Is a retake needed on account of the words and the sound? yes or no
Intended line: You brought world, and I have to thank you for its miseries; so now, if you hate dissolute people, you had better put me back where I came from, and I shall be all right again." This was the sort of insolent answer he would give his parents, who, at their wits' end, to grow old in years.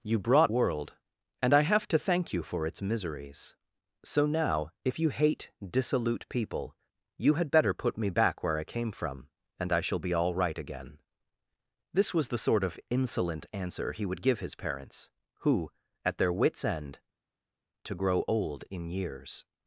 no